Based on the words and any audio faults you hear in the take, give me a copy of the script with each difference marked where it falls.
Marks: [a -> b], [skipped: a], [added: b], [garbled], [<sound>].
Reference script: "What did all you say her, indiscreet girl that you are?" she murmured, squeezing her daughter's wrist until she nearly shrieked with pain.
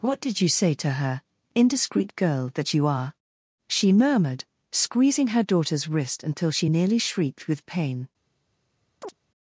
"What did [skipped: all] you say [added: to] her, indiscreet girl that you are?" she murmured, squeezing her daughter's wrist until she nearly shrieked with pain. [chirp]